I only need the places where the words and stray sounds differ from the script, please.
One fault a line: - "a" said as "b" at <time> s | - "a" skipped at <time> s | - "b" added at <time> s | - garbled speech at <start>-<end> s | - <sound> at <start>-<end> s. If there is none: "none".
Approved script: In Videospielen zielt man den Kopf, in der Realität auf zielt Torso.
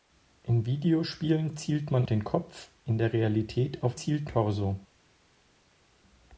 none